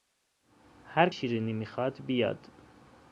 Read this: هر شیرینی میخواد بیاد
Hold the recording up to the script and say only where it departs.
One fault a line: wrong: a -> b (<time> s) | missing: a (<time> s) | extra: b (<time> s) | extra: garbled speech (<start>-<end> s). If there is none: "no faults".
no faults